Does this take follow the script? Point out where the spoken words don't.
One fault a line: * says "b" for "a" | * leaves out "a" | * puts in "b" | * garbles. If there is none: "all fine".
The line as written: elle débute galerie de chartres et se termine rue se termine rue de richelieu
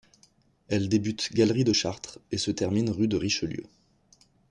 * leaves out "se termine rue"